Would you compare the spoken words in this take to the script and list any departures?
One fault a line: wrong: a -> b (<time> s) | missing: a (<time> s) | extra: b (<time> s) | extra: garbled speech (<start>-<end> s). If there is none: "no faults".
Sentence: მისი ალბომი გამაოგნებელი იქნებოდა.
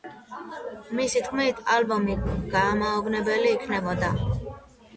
extra: თქმით (1.3 s)